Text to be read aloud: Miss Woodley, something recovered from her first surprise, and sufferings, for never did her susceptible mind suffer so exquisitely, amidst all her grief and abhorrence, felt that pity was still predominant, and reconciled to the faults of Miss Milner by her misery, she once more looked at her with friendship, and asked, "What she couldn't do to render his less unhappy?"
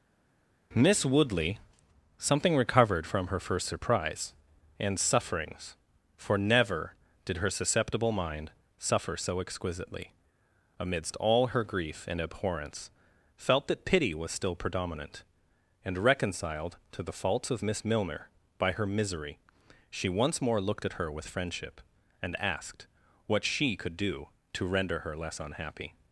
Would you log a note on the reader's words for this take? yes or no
yes